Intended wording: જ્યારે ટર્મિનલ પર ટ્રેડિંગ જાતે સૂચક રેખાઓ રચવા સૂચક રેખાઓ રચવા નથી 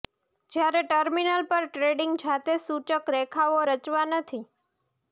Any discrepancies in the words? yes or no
yes